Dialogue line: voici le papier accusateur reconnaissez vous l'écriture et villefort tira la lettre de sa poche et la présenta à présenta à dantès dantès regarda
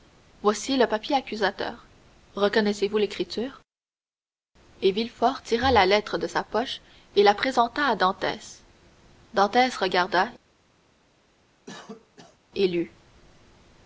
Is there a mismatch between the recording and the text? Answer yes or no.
yes